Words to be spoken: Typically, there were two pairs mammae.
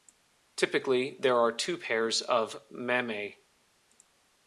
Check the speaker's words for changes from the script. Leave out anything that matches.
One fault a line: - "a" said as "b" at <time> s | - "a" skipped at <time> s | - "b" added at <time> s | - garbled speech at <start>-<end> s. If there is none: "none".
- "were" said as "are" at 1.4 s
- "of" added at 2.2 s